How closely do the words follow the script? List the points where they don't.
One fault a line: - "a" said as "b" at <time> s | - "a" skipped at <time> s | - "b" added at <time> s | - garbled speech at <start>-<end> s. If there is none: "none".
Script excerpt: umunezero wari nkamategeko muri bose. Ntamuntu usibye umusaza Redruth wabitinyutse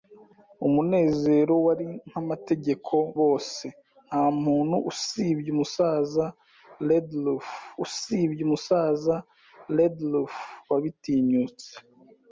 - "muri" skipped at 3.0 s
- "usibye umusaza Redruth" added at 7.9 s